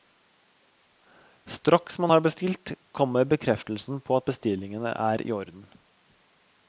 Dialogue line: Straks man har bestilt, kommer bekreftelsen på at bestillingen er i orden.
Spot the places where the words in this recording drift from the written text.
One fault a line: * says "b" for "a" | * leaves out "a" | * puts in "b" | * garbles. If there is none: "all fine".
all fine